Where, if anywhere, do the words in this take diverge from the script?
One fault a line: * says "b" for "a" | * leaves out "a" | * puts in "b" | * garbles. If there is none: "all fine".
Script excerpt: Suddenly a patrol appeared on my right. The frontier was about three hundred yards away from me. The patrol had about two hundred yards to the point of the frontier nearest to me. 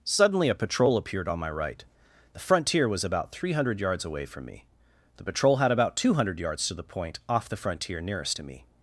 * says "off" for "of"